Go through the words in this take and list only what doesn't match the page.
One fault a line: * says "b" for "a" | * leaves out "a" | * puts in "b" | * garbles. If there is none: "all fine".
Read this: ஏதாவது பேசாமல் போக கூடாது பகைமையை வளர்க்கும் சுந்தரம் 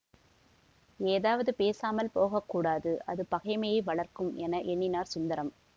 * puts in "அது"
* puts in "என எண்ணினார்"